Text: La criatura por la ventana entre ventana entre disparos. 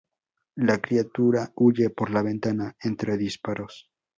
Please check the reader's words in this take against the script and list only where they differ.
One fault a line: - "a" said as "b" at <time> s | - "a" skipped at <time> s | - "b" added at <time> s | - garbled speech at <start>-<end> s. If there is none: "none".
- "huye" added at 1.6 s
- "ventana entre" skipped at 3.2 s